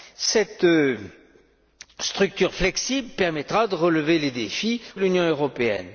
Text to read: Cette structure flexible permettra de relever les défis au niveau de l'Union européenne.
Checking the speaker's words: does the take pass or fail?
fail